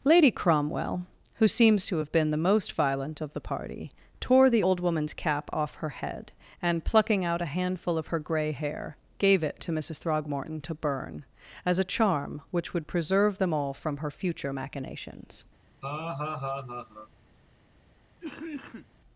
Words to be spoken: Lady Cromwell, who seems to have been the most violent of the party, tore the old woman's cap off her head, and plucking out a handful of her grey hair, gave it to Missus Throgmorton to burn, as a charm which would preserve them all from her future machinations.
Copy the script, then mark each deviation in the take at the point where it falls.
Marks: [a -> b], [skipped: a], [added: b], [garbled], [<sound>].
Lady Cromwell, who seems to have been the most violent of the party, tore the old woman's cap off her head, and plucking out a handful of her grey hair, gave it to Missus Throgmorton to burn, as a charm which would preserve them all from her future machinations. [laugh] [cough]